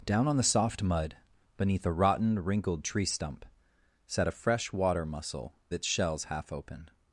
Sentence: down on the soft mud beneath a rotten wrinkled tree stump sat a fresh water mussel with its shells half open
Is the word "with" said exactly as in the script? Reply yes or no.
no